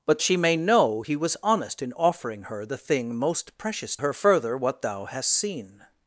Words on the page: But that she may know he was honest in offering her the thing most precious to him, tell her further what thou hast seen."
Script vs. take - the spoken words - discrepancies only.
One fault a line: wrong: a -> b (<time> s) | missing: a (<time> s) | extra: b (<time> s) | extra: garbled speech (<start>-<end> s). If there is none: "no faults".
missing: that (0.2 s)
missing: to him tell (4.0 s)